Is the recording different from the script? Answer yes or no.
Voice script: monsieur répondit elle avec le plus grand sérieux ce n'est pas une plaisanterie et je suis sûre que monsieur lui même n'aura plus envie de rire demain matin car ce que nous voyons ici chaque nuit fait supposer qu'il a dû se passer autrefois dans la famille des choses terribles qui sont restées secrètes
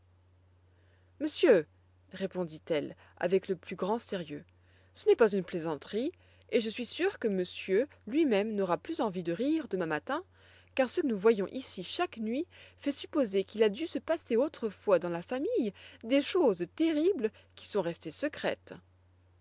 yes